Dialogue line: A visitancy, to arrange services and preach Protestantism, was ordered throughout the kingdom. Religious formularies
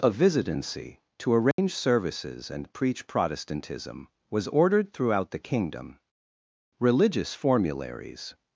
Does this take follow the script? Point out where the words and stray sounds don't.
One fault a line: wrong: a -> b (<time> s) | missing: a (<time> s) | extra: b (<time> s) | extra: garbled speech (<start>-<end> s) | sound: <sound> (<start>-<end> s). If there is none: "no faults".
sound: dropout (1.5-1.6 s)